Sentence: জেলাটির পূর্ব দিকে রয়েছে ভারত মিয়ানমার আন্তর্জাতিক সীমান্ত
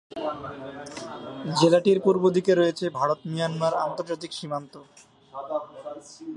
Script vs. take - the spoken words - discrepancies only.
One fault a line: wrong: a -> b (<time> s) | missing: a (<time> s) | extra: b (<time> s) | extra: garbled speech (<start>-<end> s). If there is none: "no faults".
no faults